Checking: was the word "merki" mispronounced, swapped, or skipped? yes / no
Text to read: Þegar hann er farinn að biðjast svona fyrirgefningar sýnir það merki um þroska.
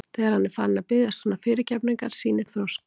yes